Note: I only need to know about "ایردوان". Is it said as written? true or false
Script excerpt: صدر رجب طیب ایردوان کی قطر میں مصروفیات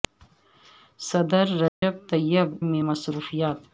false